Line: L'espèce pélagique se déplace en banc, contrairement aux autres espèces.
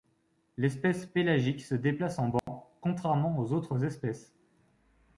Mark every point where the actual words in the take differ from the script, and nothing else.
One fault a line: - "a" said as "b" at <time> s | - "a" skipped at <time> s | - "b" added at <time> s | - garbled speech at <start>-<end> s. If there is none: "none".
none